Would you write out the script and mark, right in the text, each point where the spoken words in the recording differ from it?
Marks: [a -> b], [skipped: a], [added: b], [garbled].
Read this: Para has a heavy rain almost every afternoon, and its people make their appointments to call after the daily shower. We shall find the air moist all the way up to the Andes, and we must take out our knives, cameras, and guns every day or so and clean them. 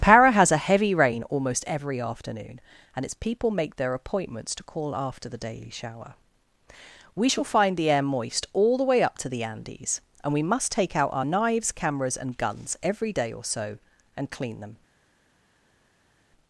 Para has a heavy rain almost every afternoon, and its people make their appointments to call after the daily shower. We shall find the air moist all the way up to the Andes, and we must take out our knives, cameras, and guns every day or so and clean them.